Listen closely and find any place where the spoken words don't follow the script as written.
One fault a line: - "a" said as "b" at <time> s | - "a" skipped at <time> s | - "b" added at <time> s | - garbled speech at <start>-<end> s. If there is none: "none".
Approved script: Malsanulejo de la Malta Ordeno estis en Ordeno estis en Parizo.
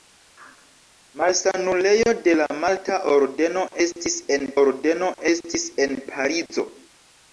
none